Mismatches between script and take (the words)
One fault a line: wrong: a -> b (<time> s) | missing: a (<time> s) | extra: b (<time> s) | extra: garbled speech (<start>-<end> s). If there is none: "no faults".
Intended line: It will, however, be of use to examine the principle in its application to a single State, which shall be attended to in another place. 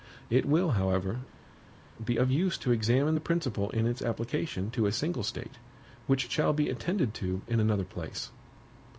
no faults